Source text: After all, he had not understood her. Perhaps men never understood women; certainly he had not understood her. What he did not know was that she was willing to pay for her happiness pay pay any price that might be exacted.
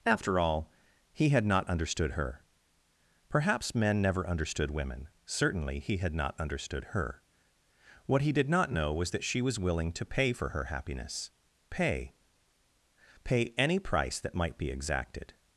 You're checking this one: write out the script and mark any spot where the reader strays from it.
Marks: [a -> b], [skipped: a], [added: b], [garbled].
After all, he had not understood her. Perhaps men never understood women; certainly he had not understood her. What he did not know was that she was willing to pay for her happiness pay pay any price that might be exacted.